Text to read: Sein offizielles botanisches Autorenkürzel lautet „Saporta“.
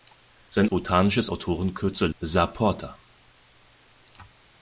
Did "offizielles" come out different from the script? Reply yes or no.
yes